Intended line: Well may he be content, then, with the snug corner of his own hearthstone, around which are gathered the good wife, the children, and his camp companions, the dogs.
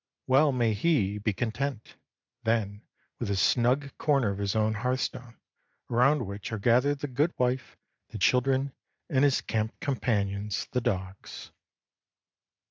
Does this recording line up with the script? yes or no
yes